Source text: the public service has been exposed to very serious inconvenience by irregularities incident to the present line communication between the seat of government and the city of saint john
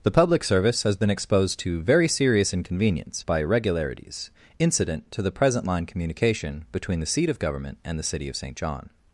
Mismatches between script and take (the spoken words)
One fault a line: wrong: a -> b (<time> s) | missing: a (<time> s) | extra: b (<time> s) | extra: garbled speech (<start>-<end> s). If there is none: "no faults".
no faults